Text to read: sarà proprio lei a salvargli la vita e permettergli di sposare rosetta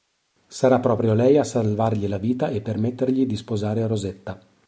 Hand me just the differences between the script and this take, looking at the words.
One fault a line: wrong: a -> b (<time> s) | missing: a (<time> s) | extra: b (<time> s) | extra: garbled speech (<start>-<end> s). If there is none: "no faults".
no faults